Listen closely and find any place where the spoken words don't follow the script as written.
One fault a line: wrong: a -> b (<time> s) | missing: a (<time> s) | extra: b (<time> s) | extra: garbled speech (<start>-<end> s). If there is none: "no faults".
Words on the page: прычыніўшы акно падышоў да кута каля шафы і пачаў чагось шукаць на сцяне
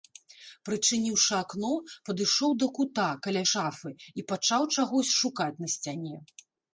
no faults